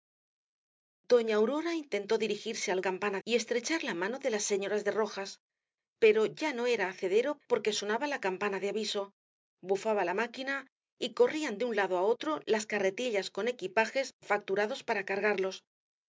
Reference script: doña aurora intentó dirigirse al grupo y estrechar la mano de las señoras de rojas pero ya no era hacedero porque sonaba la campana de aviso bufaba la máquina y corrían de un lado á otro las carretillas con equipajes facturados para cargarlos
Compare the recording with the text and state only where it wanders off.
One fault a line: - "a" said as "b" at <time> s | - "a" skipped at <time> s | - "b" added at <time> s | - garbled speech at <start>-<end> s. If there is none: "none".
- "grupo" said as "campana" at 2.8 s